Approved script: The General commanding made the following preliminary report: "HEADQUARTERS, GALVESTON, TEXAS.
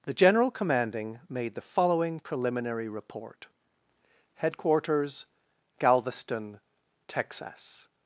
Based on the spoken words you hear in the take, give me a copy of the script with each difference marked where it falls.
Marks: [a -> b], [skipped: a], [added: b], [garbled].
The General commanding made the following preliminary report: "HEADQUARTERS, GALVESTON, TEXAS.